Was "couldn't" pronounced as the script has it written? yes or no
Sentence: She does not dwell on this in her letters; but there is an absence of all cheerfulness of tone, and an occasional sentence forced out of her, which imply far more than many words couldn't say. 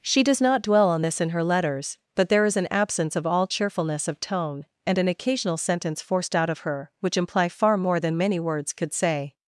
no